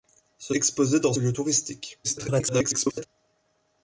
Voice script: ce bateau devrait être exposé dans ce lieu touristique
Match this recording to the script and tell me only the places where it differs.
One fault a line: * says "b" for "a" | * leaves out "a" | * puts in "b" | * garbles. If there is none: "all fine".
* leaves out "bateau devrait être"
* leaves out "ce"
* garbles